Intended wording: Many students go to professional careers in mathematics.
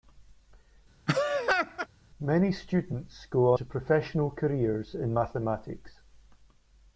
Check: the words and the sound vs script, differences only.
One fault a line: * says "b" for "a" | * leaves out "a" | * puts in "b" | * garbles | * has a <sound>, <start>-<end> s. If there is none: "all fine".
* has a laugh, 1.1-1.9 s